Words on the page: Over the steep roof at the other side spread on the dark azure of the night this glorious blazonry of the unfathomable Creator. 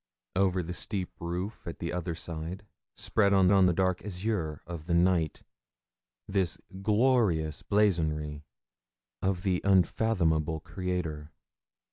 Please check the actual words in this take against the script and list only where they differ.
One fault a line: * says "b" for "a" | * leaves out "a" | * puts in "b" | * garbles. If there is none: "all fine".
* puts in "on"